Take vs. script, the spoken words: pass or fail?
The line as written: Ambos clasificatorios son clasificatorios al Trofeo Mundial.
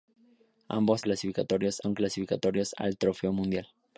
pass